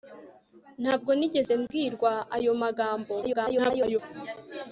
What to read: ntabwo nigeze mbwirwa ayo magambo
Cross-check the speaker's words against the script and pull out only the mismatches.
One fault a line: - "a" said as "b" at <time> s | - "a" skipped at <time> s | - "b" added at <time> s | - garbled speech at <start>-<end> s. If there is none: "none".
- garbled speech at 3.2-4.0 s